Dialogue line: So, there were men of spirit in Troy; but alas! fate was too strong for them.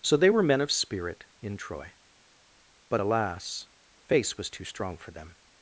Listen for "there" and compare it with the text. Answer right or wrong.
wrong